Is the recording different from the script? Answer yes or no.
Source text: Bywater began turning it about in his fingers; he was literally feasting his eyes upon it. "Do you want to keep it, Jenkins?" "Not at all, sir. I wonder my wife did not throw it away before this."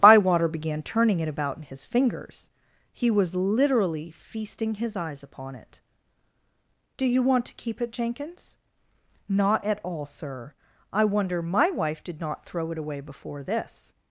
no